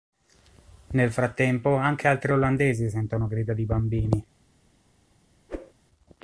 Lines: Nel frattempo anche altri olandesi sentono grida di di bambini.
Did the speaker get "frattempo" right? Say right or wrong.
right